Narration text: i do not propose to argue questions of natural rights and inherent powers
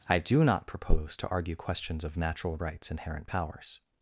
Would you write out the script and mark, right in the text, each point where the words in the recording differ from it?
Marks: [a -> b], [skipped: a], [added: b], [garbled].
i do not propose to argue questions of natural rights [skipped: and] inherent powers